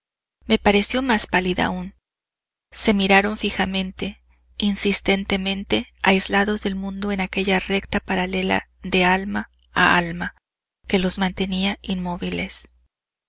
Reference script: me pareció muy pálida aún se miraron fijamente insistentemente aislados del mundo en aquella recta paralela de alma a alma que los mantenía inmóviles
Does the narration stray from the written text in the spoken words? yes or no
yes